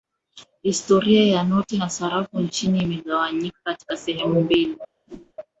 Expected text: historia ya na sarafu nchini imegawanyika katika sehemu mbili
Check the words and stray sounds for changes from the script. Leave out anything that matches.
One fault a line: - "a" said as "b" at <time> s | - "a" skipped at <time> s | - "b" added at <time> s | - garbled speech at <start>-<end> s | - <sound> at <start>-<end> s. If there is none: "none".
- "noti" added at 1.4 s
- whoosh at 5.1-5.3 s